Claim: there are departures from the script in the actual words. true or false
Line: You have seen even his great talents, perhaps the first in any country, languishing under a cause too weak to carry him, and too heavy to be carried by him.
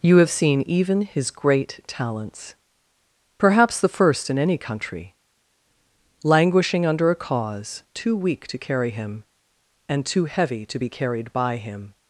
false